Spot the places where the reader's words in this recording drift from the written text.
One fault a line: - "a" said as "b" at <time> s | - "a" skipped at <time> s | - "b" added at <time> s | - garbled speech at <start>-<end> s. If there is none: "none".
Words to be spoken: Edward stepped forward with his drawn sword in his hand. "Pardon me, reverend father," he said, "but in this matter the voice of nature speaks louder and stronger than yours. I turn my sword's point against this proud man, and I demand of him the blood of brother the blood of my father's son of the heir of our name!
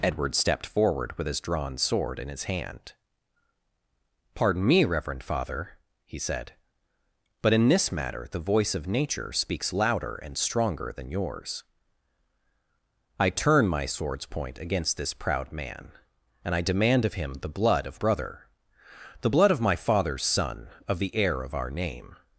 none